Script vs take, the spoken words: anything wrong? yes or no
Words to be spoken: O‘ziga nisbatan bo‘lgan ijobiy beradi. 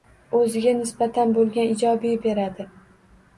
no